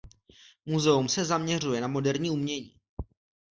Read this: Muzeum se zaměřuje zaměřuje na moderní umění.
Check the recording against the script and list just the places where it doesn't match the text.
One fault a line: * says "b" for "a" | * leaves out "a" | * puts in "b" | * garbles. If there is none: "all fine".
* leaves out "zaměřuje"